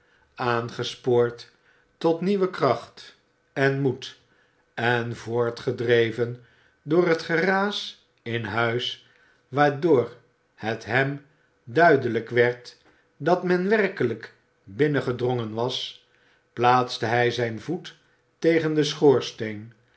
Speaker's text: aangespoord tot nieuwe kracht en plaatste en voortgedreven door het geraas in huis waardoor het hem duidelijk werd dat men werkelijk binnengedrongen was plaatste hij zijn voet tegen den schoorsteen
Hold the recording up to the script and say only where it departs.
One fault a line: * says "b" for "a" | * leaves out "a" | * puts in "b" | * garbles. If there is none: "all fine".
* says "moed" for "plaatste"